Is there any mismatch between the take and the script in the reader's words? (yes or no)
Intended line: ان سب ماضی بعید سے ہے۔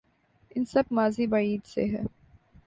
no